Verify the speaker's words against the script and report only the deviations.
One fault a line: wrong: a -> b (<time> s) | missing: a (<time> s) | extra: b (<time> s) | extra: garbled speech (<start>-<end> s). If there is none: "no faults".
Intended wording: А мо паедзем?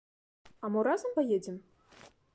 extra: разам (0.9 s)